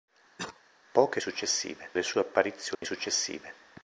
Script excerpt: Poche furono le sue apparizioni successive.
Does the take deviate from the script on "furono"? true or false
true